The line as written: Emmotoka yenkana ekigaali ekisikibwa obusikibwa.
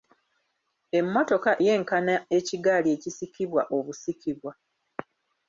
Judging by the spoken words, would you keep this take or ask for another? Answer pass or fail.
pass